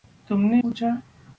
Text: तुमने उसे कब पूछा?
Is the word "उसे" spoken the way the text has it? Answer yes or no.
no